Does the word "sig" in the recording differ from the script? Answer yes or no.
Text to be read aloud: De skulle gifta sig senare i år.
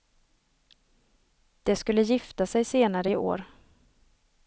no